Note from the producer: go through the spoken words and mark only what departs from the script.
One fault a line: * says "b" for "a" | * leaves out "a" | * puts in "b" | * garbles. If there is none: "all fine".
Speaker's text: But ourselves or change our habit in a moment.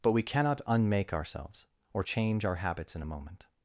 * puts in "we cannot unmake"
* says "habits" for "habit"